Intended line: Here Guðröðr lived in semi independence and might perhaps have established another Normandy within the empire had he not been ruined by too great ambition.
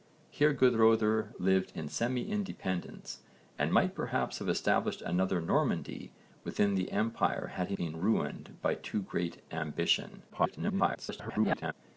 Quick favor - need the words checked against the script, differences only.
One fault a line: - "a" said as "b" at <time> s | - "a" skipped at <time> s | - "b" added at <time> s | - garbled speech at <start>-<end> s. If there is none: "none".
- "not" skipped at 7.8 s
- garbled speech at 10.3-11.7 s